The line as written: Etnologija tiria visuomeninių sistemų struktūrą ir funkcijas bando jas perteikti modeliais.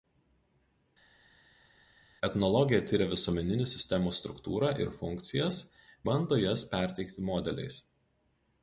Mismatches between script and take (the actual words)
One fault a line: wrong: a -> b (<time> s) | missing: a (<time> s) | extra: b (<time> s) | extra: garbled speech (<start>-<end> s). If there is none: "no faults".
no faults